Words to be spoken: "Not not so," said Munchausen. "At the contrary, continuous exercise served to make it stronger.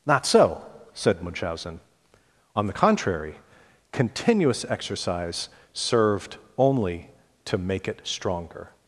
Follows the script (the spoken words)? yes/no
no